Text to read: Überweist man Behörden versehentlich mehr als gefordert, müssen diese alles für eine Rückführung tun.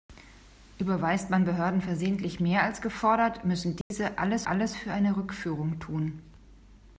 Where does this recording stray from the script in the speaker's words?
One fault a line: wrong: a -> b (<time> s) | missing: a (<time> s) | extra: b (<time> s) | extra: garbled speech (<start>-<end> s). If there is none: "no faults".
extra: alles (4.5 s)